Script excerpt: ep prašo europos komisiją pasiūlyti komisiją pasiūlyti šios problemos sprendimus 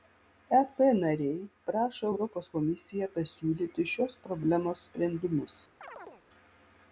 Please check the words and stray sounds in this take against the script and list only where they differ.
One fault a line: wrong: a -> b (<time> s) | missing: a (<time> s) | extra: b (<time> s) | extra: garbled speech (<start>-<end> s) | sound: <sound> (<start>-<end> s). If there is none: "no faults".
extra: nariai (1.0 s)
missing: komisiją pasiūlyti (3.9 s)
sound: chirp (5.8-6.2 s)